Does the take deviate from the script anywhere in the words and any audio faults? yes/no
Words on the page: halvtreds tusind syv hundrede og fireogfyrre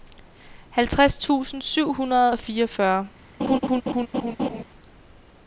yes